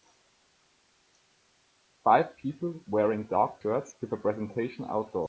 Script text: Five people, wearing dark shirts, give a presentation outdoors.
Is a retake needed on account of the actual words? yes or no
no